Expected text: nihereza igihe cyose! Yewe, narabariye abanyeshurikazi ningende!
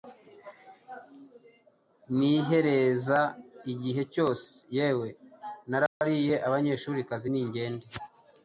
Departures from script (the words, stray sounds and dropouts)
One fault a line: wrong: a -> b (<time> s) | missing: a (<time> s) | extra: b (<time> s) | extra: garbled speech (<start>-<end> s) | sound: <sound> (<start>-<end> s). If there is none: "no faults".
sound: dropout (5.9-6.0 s)